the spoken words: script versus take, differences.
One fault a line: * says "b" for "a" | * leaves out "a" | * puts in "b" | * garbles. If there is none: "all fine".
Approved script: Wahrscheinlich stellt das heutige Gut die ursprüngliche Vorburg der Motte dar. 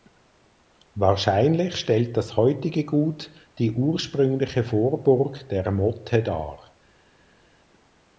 all fine